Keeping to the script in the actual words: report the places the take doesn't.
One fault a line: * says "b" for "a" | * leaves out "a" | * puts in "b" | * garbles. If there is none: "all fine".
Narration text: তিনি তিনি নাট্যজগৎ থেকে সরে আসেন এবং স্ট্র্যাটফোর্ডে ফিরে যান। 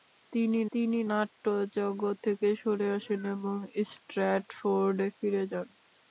all fine